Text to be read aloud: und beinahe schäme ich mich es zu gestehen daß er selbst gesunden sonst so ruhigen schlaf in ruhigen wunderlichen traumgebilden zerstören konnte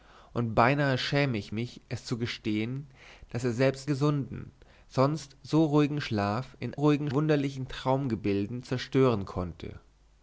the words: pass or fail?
pass